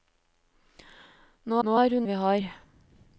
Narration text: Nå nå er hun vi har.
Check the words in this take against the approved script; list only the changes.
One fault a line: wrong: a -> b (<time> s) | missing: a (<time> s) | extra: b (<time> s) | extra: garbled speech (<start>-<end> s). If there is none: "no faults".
no faults